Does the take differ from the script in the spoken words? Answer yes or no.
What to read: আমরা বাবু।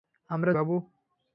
no